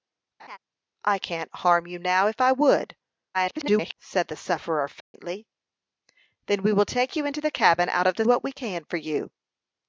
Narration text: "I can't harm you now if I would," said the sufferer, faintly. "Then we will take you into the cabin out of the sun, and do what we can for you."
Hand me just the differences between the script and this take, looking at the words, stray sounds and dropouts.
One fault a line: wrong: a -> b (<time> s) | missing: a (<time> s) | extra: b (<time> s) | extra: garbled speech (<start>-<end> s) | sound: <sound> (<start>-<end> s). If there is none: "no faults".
sound: laugh (0.4-0.6 s)
extra: garbled speech (3.3-3.9 s)
sound: dropout (5.0-5.1 s)
missing: sun and do (8.2 s)